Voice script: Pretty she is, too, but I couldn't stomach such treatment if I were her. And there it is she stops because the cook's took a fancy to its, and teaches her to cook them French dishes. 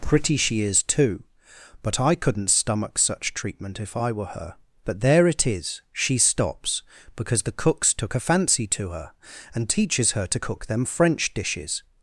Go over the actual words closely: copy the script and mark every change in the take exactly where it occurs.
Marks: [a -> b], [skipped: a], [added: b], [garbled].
Pretty she is, too, but I couldn't stomach such treatment if I were her. [And -> But] there it is she stops because the cook's took a fancy to [its, -> her] and teaches her to cook them French dishes.